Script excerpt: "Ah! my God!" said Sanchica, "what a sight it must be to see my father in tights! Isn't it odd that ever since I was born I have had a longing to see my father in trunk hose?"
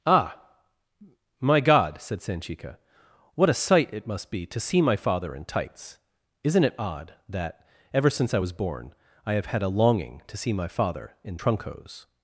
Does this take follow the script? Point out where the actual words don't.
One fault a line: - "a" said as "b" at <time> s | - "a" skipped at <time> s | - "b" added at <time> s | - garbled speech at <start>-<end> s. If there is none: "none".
none